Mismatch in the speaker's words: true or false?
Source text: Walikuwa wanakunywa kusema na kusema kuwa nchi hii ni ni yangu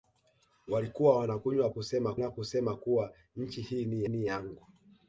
false